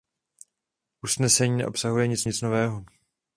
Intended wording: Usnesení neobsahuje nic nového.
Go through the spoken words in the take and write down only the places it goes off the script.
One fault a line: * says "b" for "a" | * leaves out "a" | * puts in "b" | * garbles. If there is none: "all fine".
* puts in "nic"